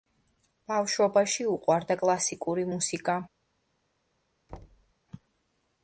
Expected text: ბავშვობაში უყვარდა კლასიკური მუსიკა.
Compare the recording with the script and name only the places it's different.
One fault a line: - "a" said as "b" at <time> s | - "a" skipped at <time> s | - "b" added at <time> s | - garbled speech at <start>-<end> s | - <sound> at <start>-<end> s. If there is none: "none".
- thud at 4.5-4.9 s